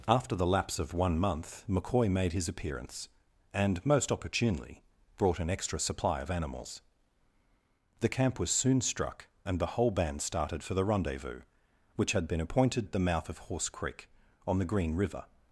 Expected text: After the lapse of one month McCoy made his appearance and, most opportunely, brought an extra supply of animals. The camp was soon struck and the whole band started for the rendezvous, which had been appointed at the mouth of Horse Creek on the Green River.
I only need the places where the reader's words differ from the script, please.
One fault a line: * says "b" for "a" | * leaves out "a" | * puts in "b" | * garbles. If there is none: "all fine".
all fine